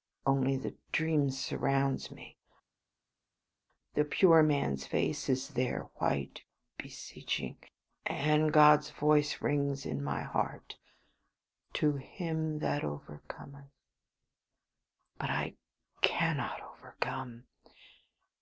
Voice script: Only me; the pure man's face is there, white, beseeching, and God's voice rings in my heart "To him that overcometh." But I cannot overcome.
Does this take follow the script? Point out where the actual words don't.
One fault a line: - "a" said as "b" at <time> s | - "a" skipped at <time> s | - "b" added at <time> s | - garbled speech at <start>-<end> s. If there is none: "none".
- "the dream surrounds" added at 0.6 s